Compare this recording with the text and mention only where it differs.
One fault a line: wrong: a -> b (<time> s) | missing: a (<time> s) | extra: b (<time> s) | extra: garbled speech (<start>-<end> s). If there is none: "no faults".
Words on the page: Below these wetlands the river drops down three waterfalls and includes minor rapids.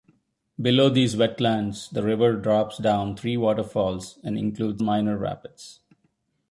no faults